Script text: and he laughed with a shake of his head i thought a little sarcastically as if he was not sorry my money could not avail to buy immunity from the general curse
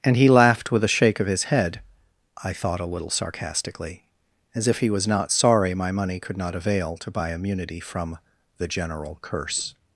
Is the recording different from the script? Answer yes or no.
no